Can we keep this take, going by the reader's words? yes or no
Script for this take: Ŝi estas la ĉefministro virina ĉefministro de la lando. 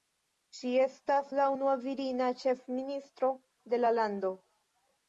no